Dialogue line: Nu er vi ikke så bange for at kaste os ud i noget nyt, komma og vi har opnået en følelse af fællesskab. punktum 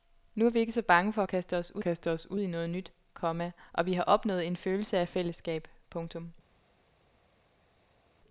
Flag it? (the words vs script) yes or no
yes